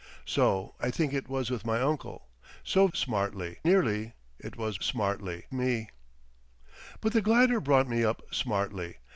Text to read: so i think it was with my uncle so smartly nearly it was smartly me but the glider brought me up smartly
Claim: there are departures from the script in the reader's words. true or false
false